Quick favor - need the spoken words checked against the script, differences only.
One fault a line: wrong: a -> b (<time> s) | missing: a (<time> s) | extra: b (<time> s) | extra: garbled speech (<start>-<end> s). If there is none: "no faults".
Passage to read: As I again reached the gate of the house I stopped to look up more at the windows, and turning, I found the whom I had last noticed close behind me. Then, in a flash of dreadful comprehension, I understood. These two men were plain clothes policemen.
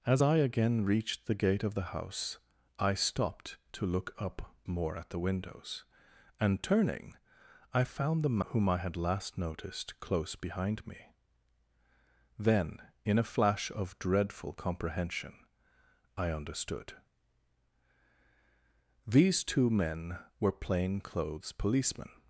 no faults